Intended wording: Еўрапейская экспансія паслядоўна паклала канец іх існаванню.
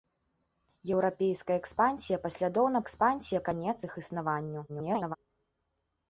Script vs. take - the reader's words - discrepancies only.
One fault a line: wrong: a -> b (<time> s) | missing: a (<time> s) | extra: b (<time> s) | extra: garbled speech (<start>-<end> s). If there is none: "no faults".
wrong: паклала -> экспансія (2.8 s)
extra: garbled speech (4.7-5.2 s)